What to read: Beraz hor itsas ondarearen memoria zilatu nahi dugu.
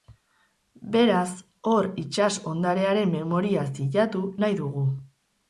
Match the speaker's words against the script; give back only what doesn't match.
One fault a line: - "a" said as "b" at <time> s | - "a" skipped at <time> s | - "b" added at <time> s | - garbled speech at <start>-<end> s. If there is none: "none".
none